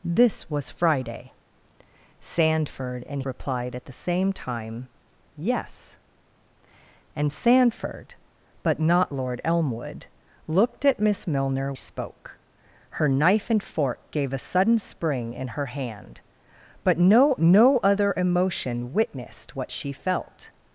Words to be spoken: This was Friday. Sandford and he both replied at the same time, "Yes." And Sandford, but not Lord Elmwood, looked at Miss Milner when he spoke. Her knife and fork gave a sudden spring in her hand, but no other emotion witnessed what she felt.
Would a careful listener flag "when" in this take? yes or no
yes